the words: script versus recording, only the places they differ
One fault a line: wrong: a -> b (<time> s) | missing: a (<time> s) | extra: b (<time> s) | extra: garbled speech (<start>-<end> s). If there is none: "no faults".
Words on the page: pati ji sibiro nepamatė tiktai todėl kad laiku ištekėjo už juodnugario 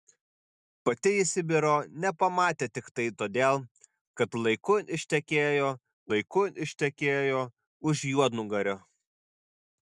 extra: laiku ištekėjo (6.1 s)